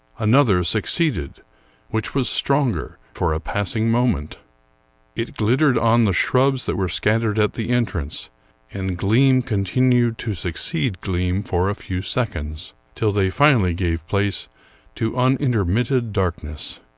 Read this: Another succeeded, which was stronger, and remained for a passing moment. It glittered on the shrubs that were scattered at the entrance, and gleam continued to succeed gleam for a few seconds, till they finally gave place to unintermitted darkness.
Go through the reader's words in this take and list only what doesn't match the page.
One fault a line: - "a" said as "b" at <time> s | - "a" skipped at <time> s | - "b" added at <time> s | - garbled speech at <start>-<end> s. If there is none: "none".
- "and remained" skipped at 3.0 s